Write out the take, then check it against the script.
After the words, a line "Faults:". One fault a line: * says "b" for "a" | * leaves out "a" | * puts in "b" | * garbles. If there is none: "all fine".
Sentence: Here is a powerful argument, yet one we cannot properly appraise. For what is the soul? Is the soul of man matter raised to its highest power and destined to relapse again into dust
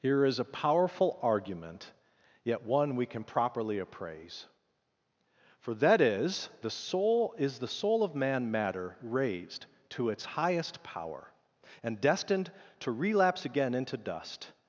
Here is a powerful argument, yet one we can properly appraise. For that is the soul? Is the soul of man matter raised to its highest power and destined to relapse again into dust
Faults:
* says "can" for "cannot"
* says "that" for "what"